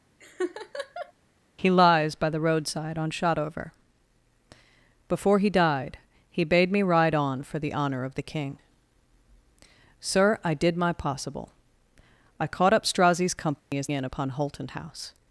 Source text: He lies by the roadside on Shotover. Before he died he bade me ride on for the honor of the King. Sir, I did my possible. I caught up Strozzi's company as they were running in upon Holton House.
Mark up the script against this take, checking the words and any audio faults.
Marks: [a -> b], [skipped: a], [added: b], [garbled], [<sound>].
[laugh] He lies by the roadside on Shotover. Before he died he bade me ride on for the honor of the King. Sir, I did my possible. I caught up Strozzi's company [dropout] as [skipped: they were running] in upon Holton House.